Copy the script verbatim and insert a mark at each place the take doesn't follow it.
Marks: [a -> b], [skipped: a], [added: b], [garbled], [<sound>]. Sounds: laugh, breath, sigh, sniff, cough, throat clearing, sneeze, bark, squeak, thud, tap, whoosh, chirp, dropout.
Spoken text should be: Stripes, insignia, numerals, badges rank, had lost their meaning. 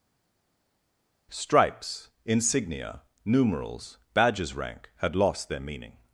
Stripes, insignia, numerals, badges rank, had lost their meaning.